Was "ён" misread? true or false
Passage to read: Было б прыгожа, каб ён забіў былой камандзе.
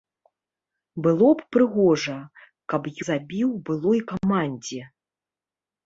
true